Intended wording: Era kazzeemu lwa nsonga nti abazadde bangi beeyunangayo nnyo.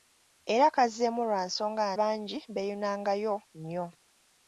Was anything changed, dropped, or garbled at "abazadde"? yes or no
yes